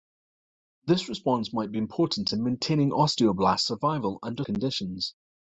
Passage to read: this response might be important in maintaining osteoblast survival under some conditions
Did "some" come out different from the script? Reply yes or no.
yes